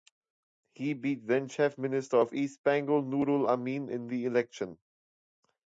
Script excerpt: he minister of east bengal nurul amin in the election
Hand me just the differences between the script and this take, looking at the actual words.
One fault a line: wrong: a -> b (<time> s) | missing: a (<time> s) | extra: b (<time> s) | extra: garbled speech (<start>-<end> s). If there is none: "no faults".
extra: beat then chief (0.9 s)